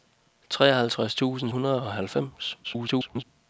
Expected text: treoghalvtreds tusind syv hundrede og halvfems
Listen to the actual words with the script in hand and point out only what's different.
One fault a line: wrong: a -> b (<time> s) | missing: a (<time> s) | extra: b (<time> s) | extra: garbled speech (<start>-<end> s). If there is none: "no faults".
missing: syv (1.5 s)
extra: garbled speech (2.6-3.2 s)